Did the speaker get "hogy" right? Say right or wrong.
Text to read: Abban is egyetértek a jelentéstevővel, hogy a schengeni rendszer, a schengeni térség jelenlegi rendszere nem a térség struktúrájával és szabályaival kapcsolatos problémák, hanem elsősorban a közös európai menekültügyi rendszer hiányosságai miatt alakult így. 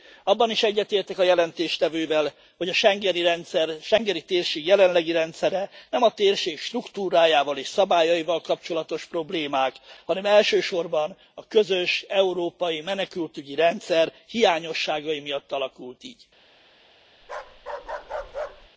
right